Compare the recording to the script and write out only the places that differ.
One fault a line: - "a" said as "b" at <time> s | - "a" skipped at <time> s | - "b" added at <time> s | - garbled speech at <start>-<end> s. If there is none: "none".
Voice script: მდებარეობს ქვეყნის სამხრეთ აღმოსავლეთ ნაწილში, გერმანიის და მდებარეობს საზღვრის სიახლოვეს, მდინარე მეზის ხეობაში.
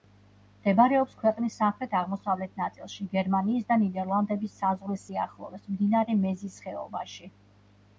- "მდებარეობს" said as "ნიდერლანდების" at 3.9 s